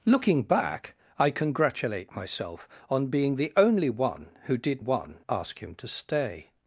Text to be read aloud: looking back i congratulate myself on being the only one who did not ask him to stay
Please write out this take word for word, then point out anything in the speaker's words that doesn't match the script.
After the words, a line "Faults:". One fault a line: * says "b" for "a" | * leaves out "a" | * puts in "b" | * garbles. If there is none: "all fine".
looking back i congratulate myself on being the only one who did one ask him to stay
Faults:
* says "one" for "not"